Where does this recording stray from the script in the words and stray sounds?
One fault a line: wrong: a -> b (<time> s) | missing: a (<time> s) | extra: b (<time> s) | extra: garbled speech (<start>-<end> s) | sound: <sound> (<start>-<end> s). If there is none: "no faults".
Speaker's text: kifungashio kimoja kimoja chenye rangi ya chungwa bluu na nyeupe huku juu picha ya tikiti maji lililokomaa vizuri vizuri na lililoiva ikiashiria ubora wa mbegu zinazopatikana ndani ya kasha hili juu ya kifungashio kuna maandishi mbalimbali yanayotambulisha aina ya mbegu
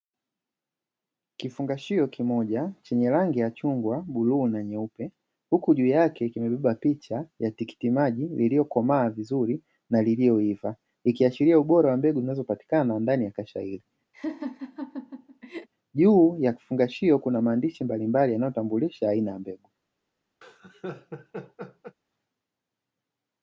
missing: kimoja (2.7 s)
extra: yake kimebeba (5.9 s)
missing: vizuri (9.6 s)
sound: laugh (14.1-15.7 s)
sound: laugh (20.4-22.0 s)